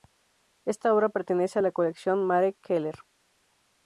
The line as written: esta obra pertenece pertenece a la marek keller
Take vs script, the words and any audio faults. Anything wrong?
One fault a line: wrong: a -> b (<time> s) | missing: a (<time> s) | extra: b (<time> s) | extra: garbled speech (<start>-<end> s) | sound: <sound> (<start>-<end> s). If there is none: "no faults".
missing: pertenece (1.6 s)
extra: colección (1.7 s)